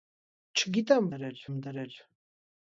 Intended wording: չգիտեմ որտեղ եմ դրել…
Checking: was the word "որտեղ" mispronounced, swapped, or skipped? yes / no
yes